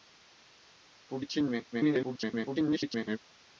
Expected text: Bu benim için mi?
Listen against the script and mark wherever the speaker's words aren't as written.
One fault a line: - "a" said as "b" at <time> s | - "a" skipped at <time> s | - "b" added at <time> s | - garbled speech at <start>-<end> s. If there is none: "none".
- "benim" skipped at 1.2 s
- garbled speech at 1.7-3.2 s